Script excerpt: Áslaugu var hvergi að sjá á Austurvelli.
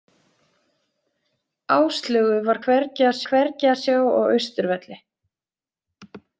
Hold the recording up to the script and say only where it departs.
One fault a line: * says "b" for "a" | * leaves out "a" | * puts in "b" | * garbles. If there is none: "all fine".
* puts in "hvergi að"